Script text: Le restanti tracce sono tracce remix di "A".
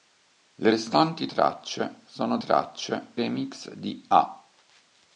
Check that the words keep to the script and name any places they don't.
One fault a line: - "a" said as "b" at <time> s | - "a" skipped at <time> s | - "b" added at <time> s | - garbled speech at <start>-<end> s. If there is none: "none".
none